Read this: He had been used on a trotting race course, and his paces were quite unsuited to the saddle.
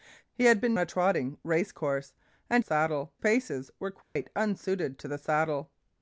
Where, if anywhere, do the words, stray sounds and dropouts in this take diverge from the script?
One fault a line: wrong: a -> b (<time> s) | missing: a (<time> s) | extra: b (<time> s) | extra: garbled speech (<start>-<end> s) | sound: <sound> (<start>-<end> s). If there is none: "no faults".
missing: used on (0.8 s)
wrong: his -> saddle (2.6 s)
sound: dropout (4.0-4.2 s)